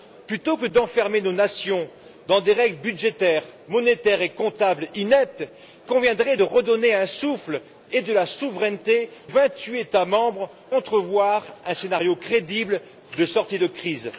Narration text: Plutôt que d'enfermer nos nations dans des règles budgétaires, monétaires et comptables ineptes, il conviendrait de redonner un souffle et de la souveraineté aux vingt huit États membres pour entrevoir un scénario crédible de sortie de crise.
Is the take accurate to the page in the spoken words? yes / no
no